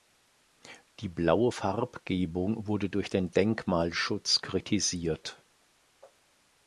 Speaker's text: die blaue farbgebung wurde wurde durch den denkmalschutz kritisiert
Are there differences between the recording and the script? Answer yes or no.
yes